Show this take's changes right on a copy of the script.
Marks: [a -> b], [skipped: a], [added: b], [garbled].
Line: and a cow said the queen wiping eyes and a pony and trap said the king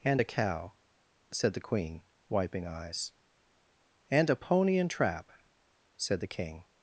and a cow said the queen wiping eyes and a pony and trap said the king